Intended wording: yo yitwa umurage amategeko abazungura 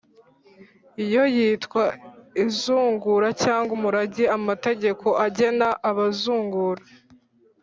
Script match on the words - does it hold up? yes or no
no